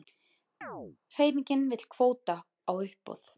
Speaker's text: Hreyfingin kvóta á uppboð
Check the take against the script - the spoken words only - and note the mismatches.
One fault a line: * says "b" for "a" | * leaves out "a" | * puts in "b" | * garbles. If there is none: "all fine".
* puts in "vill"